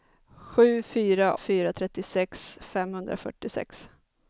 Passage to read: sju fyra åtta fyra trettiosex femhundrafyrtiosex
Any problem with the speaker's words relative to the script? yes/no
yes